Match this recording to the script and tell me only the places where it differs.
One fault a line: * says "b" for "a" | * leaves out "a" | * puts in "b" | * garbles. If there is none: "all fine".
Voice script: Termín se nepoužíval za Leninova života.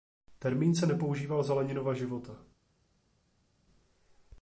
all fine